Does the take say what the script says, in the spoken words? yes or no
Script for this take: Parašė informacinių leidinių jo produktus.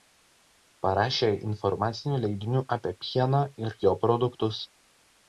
no